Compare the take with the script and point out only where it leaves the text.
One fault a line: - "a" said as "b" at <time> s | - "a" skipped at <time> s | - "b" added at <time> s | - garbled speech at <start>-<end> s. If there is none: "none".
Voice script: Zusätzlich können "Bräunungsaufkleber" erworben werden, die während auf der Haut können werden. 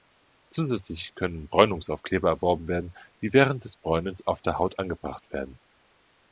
- "des Bräunens" added at 3.7 s
- "können" said as "angebracht" at 4.8 s